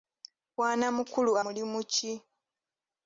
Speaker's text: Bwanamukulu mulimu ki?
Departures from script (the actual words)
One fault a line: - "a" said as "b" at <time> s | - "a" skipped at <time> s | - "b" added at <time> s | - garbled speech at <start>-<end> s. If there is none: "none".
none